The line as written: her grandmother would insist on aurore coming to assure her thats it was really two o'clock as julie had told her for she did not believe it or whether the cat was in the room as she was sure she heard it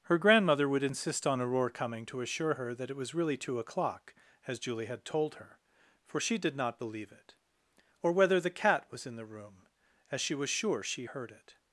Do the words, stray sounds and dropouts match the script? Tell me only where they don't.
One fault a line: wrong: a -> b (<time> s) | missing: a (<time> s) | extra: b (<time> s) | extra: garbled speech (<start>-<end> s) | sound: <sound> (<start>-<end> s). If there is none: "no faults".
wrong: thats -> that (2.7 s)